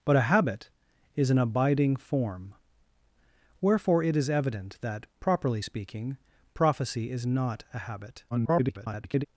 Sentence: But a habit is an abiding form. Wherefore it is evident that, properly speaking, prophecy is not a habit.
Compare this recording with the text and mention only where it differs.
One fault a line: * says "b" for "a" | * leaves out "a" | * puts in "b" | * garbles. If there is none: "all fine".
* garbles